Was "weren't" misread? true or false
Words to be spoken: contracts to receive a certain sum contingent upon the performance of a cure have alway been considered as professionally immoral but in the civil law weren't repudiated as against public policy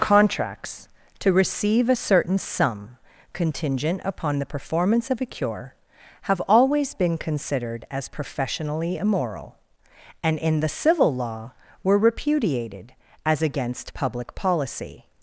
true